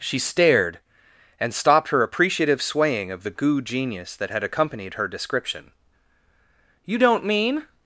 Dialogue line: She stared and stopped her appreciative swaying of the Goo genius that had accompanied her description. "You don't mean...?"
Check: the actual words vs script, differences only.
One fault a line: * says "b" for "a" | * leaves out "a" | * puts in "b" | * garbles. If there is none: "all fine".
all fine